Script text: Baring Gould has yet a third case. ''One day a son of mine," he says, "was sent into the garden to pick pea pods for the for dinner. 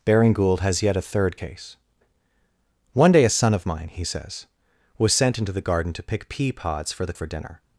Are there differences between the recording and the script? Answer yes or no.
no